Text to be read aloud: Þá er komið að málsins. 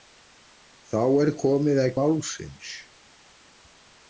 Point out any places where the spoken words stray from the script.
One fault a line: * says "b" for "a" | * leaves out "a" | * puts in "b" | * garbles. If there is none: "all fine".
all fine